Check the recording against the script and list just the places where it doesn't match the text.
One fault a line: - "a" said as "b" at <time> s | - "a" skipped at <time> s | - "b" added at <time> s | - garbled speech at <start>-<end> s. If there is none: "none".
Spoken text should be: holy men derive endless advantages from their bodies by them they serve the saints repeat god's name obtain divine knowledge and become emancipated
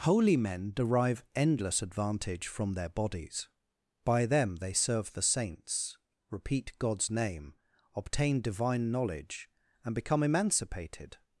- "advantages" said as "advantage" at 1.8 s